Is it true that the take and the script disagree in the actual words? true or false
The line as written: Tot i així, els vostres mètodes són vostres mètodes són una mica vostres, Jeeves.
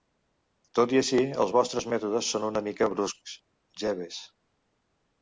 true